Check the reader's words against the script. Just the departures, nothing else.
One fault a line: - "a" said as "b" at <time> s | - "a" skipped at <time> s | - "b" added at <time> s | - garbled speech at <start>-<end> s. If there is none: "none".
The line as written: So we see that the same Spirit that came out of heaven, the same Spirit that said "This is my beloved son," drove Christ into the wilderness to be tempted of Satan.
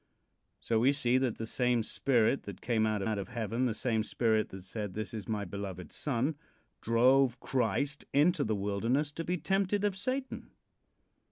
- "out" added at 3.0 s